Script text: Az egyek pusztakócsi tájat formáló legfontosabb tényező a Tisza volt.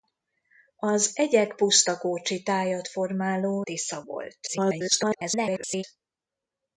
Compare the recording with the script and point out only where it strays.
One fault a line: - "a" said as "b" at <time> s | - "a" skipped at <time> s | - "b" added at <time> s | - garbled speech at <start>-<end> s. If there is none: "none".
- "legfontosabb tényező a" skipped at 3.6 s
- garbled speech at 4.5-5.8 s